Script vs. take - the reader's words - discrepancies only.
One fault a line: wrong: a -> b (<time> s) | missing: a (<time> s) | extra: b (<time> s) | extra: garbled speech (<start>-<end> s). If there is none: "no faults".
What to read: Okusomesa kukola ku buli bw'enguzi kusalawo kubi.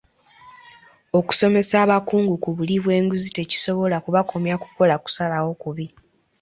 wrong: kukola -> abakungu (1.8 s)
extra: tekisobola kubakomya kukola (3.4 s)